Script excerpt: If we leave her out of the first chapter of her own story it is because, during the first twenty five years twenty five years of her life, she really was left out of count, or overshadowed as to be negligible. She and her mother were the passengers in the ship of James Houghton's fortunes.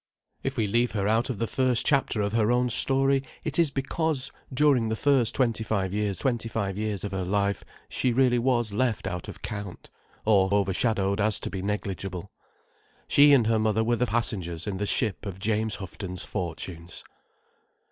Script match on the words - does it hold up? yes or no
yes